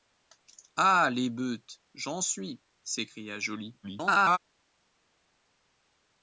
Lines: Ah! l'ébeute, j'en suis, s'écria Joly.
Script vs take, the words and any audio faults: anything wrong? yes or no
yes